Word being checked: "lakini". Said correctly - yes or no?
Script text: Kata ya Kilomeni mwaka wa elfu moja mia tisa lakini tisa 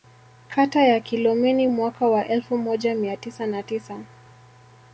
no